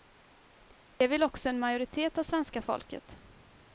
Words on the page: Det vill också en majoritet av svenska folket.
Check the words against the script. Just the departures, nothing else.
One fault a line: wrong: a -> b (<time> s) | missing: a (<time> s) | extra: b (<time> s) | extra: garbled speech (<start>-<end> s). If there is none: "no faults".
no faults